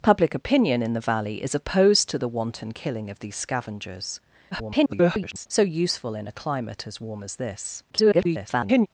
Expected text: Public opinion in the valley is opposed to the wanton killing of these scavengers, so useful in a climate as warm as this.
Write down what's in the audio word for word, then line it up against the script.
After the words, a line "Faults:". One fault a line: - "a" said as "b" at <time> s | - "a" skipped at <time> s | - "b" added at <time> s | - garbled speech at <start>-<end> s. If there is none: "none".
Public opinion in the valley is opposed to the wanton killing of these scavengers, [garbled] so useful in a climate as warm as this. [garbled]
Faults:
- garbled speech at 4.5-5.5 s
- garbled speech at 7.9-8.9 s